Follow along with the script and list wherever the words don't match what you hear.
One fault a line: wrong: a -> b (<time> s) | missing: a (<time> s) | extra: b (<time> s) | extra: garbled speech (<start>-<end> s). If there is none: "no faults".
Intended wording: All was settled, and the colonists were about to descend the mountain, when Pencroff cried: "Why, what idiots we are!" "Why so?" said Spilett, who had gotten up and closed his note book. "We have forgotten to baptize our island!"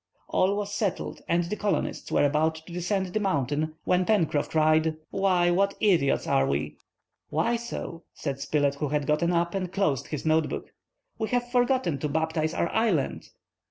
no faults